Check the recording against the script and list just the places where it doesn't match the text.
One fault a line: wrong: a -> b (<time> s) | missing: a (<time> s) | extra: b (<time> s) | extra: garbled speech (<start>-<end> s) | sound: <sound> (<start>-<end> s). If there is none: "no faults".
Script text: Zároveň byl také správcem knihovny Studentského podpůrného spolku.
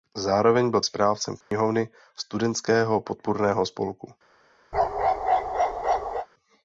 missing: také (0.8 s)
sound: dropout (1.4-1.5 s)
sound: bark (4.7-6.3 s)